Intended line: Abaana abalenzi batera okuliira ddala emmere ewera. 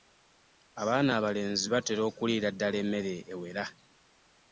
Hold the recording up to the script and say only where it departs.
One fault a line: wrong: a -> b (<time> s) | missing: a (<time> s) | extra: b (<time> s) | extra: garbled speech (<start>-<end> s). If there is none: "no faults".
no faults